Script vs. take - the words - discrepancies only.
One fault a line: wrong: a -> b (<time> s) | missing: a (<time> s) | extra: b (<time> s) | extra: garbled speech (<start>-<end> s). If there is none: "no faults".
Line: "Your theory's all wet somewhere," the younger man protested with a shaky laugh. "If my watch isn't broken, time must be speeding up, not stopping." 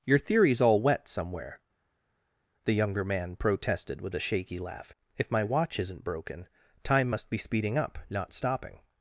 no faults